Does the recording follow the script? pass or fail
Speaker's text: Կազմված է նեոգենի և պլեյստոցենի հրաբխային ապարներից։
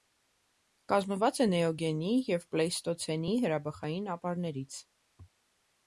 pass